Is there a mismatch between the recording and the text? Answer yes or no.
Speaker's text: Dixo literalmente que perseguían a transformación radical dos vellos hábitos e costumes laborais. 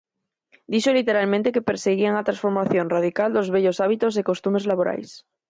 no